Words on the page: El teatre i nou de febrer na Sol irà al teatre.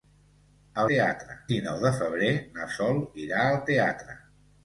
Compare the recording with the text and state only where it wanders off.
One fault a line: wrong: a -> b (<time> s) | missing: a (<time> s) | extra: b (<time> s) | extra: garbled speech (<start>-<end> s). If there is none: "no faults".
no faults